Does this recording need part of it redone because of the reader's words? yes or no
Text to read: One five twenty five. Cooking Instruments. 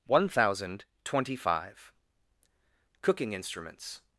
yes